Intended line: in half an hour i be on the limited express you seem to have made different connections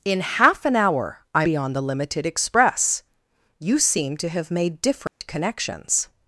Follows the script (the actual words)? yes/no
yes